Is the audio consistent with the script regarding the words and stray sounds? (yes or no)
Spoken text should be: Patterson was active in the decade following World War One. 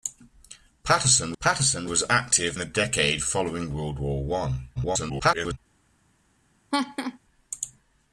no